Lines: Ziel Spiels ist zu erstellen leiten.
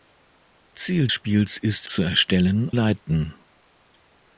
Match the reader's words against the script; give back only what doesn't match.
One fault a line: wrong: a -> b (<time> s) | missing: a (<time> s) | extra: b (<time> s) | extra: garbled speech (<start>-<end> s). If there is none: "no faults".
no faults